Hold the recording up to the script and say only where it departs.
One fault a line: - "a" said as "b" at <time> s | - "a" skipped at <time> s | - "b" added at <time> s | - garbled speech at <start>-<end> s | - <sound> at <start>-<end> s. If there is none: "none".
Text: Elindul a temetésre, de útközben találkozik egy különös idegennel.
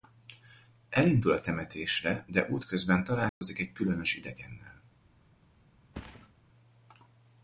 - dropout at 3.3-3.4 s
- thud at 5.9-6.3 s